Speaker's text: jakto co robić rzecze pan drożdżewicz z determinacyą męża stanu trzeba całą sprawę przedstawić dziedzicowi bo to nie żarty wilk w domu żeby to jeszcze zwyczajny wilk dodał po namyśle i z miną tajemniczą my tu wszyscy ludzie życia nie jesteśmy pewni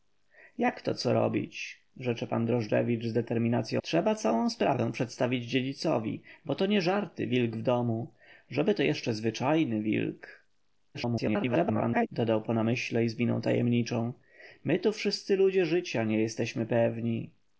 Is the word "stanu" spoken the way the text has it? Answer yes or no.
no